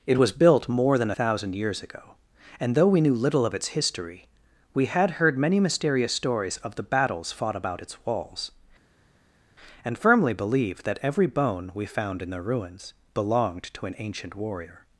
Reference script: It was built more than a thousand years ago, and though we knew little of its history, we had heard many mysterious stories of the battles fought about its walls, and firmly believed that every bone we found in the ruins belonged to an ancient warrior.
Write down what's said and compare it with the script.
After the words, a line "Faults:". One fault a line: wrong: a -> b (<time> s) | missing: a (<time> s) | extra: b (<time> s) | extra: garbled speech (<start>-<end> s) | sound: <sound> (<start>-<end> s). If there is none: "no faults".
It was built more than thousand years ago, and though we knew little of its history, we had heard many mysterious stories of the battles fought about its walls, and firmly believed that every bone we found in the ruins belonged to an ancient warrior.
Faults:
missing: a (1.1 s)